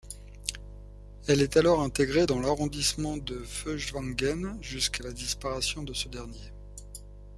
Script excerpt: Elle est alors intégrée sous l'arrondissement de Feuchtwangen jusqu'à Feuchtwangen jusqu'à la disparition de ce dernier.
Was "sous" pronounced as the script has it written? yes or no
no